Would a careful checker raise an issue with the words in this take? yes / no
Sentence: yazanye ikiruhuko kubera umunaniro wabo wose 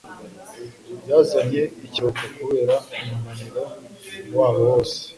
no